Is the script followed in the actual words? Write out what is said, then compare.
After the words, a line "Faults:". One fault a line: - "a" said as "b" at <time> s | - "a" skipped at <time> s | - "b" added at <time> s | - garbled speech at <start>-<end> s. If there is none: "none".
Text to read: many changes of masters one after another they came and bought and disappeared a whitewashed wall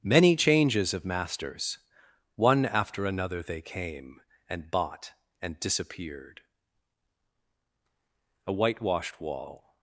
many changes of masters one after another they came and bought and disappeared a whitewashed wall
Faults:
none